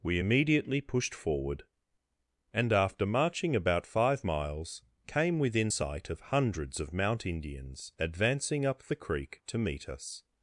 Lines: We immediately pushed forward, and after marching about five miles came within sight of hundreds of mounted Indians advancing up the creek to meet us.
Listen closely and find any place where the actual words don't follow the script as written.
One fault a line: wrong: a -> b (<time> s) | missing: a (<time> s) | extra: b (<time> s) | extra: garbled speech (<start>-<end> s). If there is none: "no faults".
wrong: mounted -> mount (6.9 s)